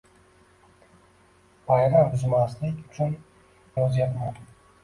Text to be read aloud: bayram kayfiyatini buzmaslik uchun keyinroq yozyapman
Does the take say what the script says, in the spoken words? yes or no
no